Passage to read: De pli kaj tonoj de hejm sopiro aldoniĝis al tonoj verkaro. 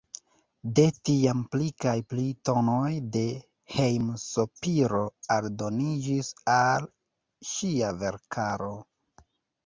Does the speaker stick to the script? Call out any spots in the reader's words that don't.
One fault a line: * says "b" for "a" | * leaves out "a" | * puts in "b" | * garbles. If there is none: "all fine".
* puts in "tiam"
* puts in "pli"
* says "ŝia" for "tonoj"